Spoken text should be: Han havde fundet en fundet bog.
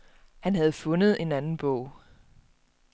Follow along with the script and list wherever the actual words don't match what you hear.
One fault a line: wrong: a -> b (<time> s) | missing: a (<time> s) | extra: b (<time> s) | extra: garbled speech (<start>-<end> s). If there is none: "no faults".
wrong: fundet -> anden (1.3 s)